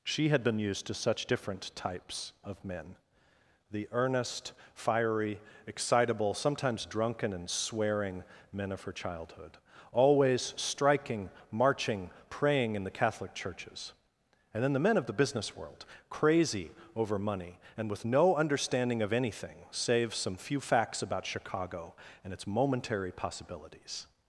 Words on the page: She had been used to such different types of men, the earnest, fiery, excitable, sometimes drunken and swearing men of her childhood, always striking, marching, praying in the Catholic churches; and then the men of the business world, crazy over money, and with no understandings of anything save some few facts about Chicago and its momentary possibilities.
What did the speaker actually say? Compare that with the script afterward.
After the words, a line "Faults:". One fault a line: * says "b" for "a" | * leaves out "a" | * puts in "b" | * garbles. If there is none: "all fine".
She had been used to such different types of men, the earnest, fiery, excitable, sometimes drunken and swearing men of her childhood, always striking, marching, praying in the Catholic churches; and then the men of the business world, crazy over money, and with no understanding of anything save some few facts about Chicago and its momentary possibilities.
Faults:
* says "understanding" for "understandings"